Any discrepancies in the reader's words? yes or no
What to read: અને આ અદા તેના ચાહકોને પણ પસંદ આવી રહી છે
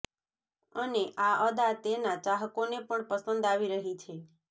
no